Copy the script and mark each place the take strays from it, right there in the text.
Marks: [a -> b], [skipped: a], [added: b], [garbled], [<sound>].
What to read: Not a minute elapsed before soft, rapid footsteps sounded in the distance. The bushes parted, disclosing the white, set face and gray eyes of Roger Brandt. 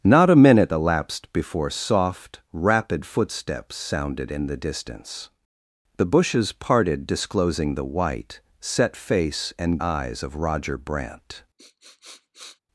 Not a minute elapsed before soft, rapid footsteps sounded in the distance. The bushes parted, disclosing the white, set face and [skipped: gray] eyes of Roger Brandt. [sniff]